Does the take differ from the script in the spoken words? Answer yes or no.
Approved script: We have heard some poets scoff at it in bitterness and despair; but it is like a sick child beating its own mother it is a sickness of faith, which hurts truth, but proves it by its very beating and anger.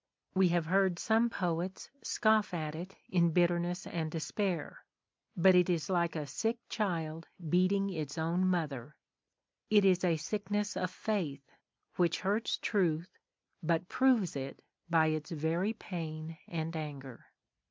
yes